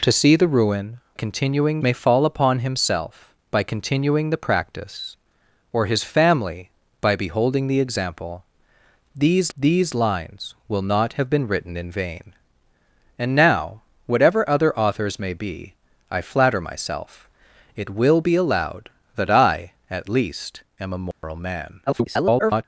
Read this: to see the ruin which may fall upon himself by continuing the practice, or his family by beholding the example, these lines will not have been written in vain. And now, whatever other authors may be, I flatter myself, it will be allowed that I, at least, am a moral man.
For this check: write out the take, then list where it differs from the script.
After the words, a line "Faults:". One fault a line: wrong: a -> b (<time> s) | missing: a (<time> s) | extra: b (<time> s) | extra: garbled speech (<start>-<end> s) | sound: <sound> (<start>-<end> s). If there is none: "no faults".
to see the ruin continuing may fall upon himself by continuing the practice, or his family by beholding the example, these these lines will not have been written in vain. And now, whatever other authors may be, I flatter myself, it will be allowed that I, at least, am a moral man. [garbled]
Faults:
wrong: which -> continuing (1.1 s)
extra: these (9.5 s)
sound: dropout (21.1-21.2 s)
extra: garbled speech (21.9-22.6 s)